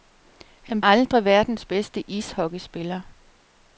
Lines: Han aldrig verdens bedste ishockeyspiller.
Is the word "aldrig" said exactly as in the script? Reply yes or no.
yes